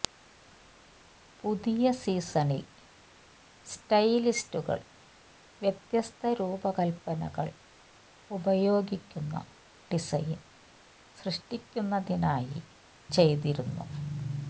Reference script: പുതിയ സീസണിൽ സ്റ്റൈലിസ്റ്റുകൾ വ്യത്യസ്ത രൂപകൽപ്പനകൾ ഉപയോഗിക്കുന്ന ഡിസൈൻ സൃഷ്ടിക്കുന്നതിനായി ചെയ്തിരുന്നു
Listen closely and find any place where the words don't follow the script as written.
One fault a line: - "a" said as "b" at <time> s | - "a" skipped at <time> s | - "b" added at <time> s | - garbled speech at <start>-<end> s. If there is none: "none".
none